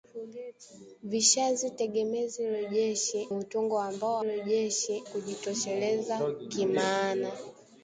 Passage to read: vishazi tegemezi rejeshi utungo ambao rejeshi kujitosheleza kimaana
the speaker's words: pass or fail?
pass